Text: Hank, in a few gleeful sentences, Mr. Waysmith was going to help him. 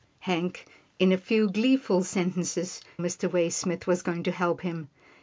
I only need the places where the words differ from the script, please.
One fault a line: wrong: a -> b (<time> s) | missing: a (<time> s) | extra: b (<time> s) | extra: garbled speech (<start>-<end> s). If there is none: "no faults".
no faults